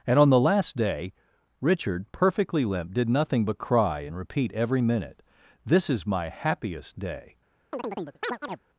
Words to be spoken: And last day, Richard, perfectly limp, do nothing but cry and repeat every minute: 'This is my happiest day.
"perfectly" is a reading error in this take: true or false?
false